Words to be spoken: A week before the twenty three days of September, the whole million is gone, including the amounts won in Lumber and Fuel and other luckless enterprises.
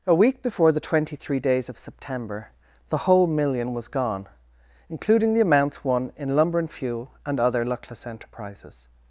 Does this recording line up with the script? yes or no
no